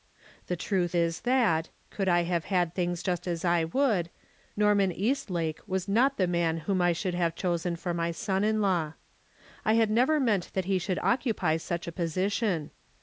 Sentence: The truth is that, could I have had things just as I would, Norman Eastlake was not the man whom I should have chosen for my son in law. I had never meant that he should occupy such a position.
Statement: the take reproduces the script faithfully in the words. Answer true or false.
true